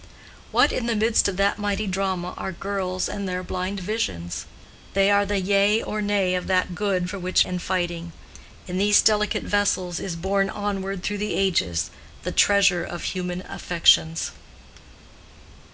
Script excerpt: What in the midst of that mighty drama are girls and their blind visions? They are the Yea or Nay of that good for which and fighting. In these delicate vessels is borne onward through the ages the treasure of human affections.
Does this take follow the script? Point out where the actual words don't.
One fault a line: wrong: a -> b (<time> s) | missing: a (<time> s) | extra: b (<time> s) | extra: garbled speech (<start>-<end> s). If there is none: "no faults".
no faults